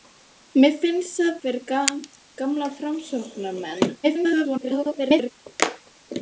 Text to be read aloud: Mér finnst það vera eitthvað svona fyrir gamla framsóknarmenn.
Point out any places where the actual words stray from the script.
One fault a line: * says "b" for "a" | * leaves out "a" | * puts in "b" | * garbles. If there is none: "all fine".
* leaves out "vera eitthvað svona"
* garbles